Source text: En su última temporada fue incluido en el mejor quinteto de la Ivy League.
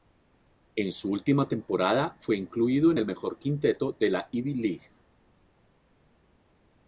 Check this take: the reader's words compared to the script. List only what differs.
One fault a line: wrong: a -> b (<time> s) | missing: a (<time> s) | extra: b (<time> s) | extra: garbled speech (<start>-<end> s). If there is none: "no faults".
no faults